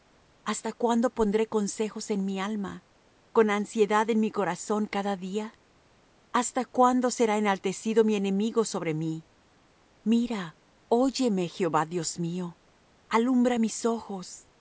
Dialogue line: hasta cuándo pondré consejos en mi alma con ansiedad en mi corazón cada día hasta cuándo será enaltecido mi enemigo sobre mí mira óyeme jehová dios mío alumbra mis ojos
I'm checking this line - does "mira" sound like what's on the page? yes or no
yes